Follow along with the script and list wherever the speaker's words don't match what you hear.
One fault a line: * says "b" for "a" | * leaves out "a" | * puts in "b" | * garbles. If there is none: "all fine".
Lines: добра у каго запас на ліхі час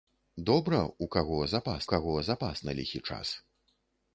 * puts in "каго запас"